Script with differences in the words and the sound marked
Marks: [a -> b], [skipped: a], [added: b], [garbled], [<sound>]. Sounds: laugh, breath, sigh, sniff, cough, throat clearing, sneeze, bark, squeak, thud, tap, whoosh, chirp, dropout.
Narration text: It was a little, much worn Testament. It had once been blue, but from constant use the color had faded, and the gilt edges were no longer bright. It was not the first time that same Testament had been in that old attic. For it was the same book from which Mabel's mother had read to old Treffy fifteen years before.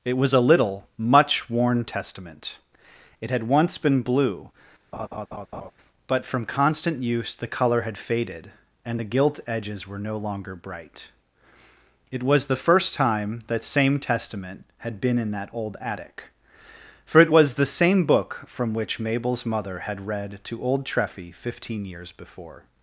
It was a little, much worn Testament. It had once been blue, [laugh] but from constant use the color had faded, and the gilt edges were no longer bright. It was [skipped: not] the first time that same Testament had been in that old attic. For it was the same book from which Mabel's mother had read to old Treffy fifteen years before.